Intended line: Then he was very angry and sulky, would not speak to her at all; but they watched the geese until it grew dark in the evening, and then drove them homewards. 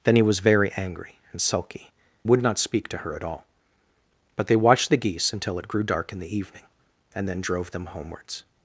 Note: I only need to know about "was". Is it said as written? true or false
true